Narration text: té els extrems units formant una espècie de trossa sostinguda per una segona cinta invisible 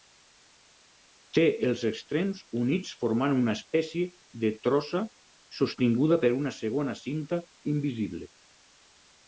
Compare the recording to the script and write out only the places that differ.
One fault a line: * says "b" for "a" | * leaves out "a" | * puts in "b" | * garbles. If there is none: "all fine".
all fine